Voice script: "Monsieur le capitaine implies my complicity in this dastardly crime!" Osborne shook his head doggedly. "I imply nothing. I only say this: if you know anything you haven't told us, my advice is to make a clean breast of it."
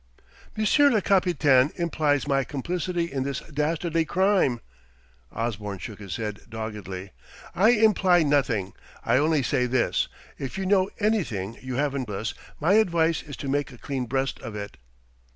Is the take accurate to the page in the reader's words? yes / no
no